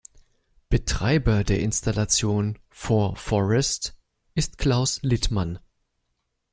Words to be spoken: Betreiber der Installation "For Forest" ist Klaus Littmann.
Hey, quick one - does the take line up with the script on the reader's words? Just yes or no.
yes